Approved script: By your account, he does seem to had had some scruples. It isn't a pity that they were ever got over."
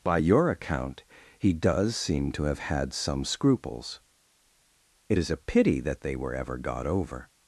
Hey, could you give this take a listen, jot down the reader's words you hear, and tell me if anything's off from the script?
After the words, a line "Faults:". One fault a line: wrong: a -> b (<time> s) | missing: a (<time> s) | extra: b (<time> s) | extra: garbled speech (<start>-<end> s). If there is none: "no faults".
By your account, he does seem to have had some scruples. It is a pity that they were ever got over."
Faults:
wrong: had -> have (2.4 s)
wrong: isn't -> is (5.2 s)